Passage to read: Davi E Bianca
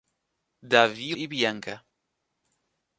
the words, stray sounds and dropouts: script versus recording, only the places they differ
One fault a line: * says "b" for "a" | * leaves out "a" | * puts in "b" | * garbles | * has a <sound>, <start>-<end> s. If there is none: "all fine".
all fine